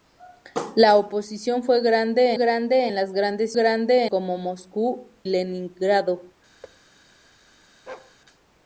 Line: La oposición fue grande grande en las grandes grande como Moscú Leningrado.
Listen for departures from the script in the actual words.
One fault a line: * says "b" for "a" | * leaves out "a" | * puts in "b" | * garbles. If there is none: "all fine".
all fine